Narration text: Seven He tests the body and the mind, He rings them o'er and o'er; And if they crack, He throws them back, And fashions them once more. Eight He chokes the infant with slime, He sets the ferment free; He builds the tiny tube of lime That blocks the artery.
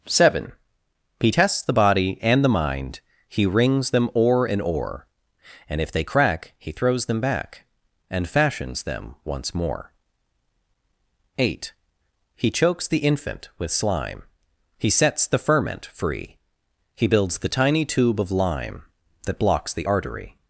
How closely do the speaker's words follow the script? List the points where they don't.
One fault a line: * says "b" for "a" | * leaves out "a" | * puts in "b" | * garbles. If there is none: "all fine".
all fine